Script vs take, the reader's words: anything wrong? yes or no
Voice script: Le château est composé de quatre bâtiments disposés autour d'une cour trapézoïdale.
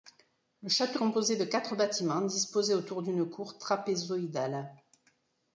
yes